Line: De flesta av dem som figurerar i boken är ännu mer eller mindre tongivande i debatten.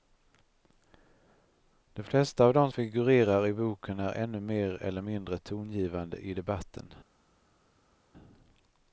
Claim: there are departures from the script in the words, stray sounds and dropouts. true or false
true